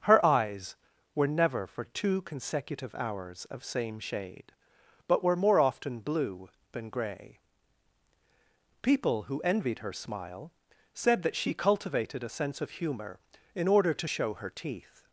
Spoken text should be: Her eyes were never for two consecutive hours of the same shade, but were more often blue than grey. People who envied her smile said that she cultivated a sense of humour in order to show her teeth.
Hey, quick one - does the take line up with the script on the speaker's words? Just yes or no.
no